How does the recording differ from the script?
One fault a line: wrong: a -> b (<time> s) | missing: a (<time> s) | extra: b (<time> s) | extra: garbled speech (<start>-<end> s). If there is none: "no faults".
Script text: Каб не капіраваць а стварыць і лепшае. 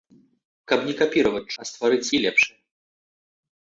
no faults